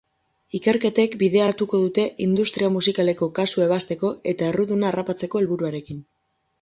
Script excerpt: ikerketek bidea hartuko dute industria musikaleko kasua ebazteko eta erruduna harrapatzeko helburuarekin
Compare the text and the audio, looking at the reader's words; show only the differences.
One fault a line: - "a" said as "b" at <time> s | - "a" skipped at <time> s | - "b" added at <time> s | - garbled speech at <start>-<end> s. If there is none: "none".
none